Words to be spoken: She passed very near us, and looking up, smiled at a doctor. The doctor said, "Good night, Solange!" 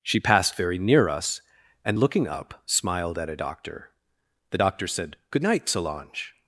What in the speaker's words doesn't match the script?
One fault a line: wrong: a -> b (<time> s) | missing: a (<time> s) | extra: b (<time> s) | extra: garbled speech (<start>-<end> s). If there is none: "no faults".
no faults